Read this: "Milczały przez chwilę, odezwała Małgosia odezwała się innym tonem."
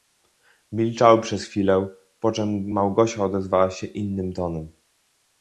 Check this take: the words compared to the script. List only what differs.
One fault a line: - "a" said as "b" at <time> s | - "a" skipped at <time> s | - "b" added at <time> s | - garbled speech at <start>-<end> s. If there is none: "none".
- "odezwała" said as "poczem" at 2.2 s